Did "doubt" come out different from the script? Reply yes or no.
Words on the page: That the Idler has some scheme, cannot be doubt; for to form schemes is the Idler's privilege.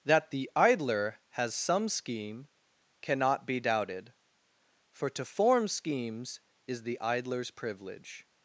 yes